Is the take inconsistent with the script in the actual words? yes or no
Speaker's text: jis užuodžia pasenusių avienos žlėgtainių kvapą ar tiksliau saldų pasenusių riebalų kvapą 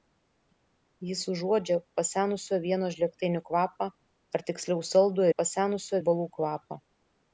no